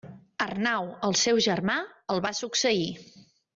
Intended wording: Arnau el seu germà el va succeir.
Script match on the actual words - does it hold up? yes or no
yes